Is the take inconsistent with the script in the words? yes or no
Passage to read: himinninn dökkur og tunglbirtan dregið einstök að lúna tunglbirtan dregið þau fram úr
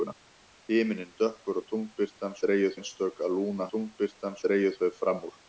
no